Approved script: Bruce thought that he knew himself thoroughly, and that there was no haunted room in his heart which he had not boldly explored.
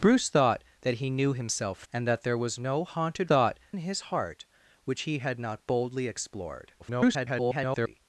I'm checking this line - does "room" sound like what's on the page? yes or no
no